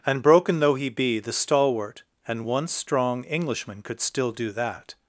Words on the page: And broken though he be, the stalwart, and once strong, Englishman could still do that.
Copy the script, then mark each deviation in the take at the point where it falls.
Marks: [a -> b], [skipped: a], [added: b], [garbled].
And broken though he be, the stalwart, and once strong, Englishman could still do that.